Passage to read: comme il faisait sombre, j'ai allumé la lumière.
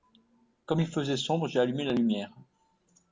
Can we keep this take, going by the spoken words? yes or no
yes